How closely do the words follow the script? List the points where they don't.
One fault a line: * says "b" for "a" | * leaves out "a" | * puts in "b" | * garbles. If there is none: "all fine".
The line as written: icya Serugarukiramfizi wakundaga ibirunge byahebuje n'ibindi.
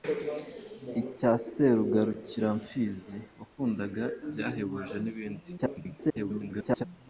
* leaves out "ibirunge"
* garbles